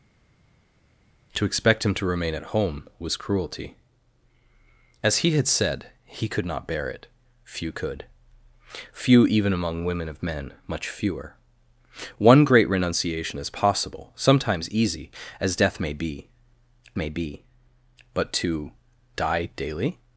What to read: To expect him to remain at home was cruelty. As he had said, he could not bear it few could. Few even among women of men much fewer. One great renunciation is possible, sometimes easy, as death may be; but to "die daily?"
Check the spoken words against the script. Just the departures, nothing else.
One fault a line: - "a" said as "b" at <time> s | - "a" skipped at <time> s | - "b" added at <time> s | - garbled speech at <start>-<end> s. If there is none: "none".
- "may be" added at 17.0 s